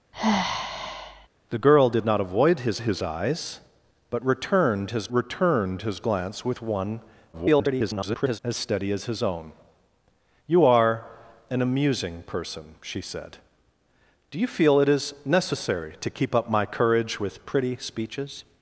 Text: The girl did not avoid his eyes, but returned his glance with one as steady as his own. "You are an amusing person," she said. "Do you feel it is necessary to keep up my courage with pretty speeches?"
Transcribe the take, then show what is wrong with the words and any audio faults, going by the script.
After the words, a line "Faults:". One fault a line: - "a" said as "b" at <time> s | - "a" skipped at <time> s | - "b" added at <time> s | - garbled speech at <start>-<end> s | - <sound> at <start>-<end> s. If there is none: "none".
The girl did not avoid his his eyes, but returned his returned his glance with one [garbled] as steady as his own. "You are an amusing person," she said. "Do you feel it is necessary to keep up my courage with pretty speeches?"
Faults:
- sigh at 0.1-1.3 s
- "his" added at 2.8 s
- "returned his" added at 5.1 s
- garbled speech at 7.3-8.4 s